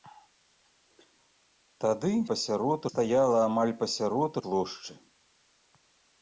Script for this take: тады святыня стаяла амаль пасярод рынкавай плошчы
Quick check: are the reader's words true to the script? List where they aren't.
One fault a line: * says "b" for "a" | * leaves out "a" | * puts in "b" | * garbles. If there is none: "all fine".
* says "пасярод" for "святыня"
* leaves out "рынкавай"